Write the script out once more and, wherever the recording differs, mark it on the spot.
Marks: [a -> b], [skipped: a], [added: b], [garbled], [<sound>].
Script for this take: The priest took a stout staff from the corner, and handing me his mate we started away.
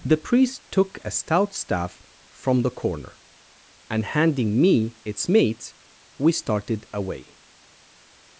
The priest took a stout staff from the corner, and handing me [his -> its] mate we started away.